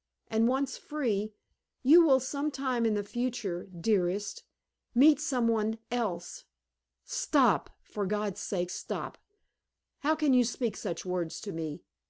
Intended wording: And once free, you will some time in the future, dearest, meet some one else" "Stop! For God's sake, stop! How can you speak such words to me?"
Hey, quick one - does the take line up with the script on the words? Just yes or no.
yes